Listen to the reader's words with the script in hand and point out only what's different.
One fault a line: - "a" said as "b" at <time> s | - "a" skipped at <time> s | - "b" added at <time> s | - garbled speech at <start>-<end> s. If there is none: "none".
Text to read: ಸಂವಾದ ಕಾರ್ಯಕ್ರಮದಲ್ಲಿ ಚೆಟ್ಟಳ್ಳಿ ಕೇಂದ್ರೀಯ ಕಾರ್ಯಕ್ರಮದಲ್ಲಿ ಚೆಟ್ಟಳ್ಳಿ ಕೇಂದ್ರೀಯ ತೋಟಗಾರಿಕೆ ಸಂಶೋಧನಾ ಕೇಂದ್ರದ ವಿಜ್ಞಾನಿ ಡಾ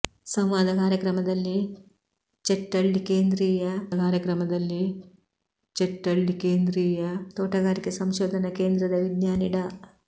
none